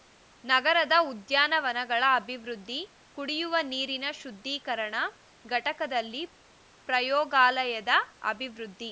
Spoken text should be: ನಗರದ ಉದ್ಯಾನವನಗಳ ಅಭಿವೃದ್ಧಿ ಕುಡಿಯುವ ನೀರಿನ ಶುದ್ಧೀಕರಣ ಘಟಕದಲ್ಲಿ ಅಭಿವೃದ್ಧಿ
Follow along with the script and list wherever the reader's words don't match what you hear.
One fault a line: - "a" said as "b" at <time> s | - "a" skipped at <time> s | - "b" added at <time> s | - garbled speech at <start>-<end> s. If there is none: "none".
- "ಪ್ರಯೋಗಾಲಯದ" added at 6.9 s